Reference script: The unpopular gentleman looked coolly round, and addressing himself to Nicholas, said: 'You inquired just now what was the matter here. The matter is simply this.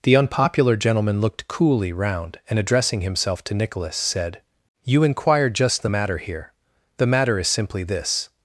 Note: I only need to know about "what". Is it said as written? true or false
false